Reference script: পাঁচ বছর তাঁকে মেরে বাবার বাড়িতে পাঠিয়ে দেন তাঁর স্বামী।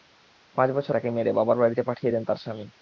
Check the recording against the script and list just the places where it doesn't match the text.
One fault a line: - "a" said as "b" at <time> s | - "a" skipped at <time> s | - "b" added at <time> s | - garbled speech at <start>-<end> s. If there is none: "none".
none